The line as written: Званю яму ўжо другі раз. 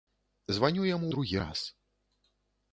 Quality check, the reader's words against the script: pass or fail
fail